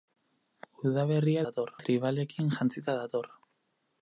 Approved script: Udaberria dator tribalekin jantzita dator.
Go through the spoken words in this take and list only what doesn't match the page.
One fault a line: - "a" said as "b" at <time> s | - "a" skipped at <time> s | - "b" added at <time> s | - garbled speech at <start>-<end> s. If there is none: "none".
none